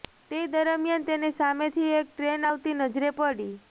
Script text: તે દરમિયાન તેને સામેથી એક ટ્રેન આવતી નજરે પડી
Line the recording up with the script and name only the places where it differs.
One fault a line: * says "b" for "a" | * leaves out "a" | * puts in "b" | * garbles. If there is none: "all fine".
all fine